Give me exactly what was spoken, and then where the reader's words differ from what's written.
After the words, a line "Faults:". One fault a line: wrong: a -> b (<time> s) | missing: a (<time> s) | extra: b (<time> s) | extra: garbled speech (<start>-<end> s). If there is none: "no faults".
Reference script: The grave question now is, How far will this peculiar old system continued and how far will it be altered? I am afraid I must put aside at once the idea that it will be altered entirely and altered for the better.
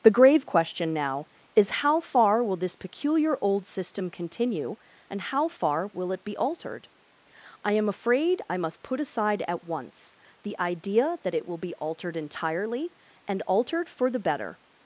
The grave question now is, How far will this peculiar old system continue and how far will it be altered? I am afraid I must put aside at once the idea that it will be altered entirely and altered for the better.
Faults:
wrong: continued -> continue (4.1 s)